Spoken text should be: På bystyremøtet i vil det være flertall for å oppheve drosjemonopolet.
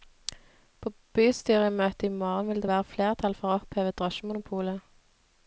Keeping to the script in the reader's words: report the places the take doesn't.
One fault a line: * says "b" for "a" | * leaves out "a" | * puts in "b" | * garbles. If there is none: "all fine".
* puts in "morgen"